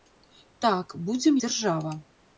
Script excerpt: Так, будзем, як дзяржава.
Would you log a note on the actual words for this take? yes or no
yes